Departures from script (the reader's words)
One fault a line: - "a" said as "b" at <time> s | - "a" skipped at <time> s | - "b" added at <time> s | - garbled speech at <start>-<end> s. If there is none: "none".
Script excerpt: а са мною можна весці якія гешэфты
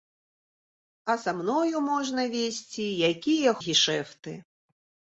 none